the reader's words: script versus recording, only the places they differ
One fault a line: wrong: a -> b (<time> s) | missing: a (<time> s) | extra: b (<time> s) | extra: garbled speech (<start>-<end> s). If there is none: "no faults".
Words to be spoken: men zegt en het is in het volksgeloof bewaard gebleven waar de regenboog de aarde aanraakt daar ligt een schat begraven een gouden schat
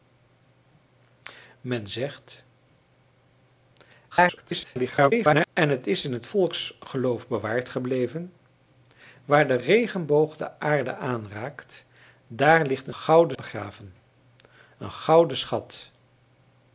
extra: garbled speech (4.1-5.5 s)
wrong: schat -> gouden (12.9 s)